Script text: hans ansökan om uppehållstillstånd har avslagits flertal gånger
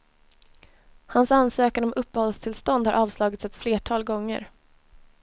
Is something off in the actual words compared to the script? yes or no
yes